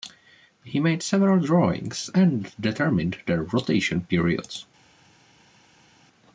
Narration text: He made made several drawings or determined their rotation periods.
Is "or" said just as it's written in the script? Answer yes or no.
no